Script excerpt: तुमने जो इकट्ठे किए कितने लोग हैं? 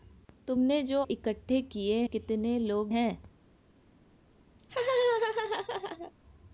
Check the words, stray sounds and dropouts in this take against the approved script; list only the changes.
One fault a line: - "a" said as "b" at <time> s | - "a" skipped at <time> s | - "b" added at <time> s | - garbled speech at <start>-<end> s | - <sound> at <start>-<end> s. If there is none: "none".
- laugh at 4.6-6.1 s